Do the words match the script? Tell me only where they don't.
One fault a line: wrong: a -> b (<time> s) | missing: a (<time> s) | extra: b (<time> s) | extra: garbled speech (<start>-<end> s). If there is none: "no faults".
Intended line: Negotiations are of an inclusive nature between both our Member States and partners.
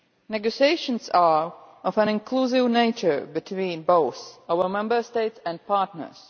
no faults